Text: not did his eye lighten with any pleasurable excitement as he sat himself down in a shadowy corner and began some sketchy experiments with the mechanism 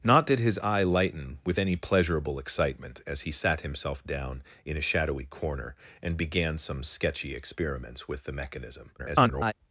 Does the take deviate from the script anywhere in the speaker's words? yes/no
yes